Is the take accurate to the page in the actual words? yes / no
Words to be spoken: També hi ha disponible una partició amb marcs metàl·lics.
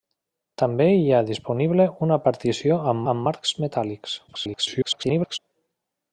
no